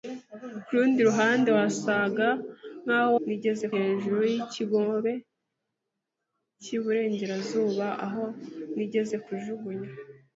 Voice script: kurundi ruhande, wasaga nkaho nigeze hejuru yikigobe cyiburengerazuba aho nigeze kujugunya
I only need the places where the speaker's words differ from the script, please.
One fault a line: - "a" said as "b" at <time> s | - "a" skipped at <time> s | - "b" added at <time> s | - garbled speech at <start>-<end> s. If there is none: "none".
none